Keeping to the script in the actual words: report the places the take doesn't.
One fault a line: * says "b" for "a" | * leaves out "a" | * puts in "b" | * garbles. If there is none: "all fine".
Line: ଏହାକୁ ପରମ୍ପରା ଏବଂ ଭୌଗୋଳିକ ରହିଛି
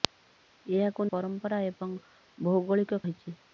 all fine